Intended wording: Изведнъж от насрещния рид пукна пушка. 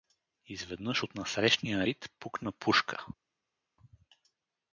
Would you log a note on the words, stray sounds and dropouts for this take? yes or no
no